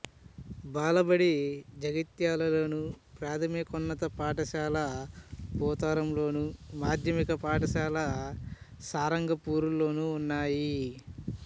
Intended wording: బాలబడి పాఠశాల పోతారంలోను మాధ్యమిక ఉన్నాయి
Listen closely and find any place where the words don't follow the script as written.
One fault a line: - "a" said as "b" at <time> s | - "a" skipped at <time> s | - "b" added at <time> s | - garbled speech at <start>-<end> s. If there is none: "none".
- "జగిత్యాలలోను ప్రాథమికోన్నత" added at 1.8 s
- "పాఠశాల సారంగపూర్లోనూ" added at 7.4 s